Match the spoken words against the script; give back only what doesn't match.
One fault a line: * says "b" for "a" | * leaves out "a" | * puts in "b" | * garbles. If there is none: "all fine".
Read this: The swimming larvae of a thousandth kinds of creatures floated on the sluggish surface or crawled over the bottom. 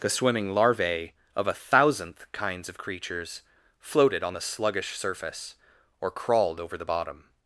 all fine